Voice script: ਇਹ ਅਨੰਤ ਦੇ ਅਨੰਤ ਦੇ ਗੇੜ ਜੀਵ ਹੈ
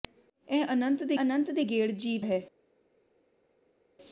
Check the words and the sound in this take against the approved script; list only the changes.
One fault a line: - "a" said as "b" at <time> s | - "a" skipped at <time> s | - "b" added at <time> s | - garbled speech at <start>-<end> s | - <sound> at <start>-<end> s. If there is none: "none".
none